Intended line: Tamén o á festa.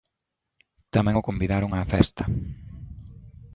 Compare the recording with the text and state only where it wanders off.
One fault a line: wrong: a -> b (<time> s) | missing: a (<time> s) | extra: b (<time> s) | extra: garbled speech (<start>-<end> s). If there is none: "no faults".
extra: convidaron (1.3 s)